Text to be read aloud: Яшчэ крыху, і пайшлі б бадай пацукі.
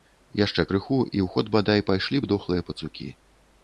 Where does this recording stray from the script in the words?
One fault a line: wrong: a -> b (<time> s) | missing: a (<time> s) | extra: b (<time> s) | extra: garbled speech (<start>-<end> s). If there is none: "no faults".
extra: ў ход бадай (1.2 s)
wrong: бадай -> дохлыя (2.4 s)